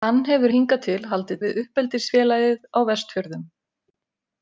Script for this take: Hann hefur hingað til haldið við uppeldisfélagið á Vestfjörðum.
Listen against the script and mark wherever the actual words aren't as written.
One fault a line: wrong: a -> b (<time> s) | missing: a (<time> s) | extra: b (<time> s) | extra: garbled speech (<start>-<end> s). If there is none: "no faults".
no faults